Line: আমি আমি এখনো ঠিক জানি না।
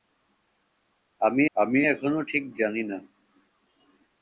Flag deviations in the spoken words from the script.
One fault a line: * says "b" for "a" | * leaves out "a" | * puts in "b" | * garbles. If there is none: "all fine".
all fine